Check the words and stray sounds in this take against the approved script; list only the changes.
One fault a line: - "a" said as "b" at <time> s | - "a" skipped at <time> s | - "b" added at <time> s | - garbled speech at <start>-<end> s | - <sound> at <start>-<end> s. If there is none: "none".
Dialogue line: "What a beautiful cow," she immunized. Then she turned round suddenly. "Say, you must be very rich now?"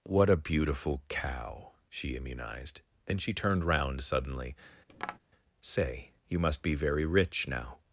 - tap at 4.9-5.2 s